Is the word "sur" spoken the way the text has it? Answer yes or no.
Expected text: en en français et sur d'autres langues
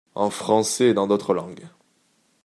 no